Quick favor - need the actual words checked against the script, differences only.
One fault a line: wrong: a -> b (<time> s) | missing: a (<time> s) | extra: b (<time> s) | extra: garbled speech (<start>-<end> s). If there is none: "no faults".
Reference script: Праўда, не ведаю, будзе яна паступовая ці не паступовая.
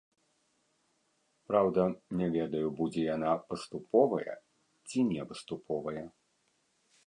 no faults